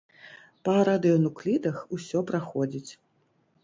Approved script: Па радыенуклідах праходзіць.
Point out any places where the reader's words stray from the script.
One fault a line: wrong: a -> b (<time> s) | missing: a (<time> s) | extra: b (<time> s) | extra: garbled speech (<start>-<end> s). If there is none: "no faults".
extra: усё (2.0 s)